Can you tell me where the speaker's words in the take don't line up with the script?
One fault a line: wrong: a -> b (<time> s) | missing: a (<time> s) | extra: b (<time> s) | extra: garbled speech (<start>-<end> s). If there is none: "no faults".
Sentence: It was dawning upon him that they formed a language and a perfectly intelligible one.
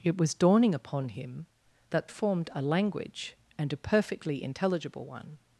missing: they (2.1 s)